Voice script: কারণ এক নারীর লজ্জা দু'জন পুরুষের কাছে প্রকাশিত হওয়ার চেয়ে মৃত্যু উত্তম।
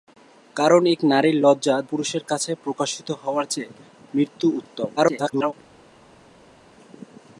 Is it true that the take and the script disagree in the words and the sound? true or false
true